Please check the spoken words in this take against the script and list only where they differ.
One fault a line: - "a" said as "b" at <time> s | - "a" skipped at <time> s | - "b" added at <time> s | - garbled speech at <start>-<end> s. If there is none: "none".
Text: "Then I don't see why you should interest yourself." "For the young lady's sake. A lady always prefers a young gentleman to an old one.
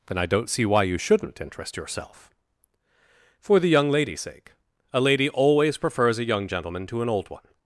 - "should" said as "shouldn't" at 0.9 s